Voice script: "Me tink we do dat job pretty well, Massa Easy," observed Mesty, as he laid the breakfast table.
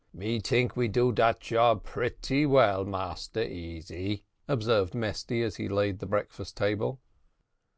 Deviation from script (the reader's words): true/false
false